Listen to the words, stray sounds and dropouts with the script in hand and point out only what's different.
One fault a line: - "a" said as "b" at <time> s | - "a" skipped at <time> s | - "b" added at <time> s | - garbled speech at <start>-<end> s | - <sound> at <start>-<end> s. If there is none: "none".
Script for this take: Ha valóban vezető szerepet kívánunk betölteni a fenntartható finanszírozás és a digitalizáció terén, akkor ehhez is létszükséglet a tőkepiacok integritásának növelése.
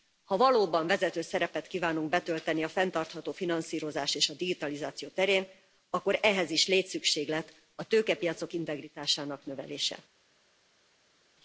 none